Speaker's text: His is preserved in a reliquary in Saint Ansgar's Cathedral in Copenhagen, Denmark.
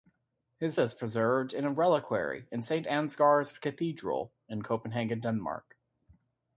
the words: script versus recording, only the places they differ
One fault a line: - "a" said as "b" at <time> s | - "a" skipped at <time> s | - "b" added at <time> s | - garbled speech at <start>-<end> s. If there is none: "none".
none